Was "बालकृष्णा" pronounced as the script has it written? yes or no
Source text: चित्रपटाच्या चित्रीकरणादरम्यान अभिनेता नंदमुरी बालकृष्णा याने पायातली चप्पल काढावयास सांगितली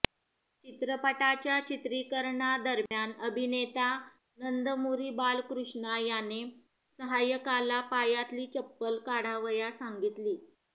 yes